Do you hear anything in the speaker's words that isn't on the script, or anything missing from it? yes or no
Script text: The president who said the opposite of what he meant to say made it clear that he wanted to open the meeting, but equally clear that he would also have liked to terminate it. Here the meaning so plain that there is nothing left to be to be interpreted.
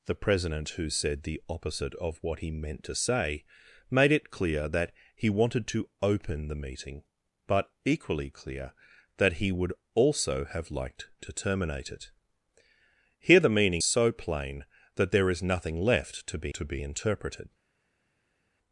no